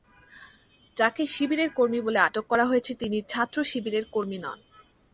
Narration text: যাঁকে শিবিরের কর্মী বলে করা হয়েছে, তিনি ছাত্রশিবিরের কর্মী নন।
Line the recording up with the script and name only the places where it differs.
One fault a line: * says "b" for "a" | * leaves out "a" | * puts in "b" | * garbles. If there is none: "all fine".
* puts in "আটক"